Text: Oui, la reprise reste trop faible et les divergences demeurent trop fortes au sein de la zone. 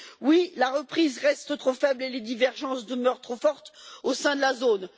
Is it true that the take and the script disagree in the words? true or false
false